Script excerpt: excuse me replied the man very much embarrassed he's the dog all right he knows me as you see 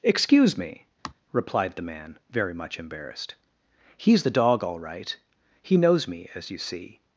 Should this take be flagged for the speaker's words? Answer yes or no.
no